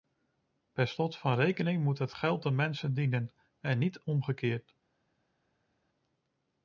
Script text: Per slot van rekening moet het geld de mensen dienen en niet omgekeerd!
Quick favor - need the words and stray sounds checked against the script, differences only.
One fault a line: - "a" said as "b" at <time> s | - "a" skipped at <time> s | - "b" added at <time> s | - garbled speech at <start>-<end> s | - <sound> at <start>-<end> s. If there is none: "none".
none